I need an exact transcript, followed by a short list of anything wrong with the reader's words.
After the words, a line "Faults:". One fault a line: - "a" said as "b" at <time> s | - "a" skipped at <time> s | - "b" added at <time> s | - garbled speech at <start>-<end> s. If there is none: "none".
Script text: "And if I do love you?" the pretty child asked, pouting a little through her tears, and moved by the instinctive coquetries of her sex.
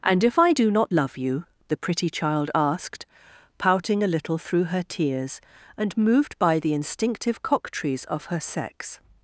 "And if I do not love you?" the pretty child asked, pouting a little through her tears, and moved by the instinctive coquetries of her sex.
Faults:
- "not" added at 0.7 s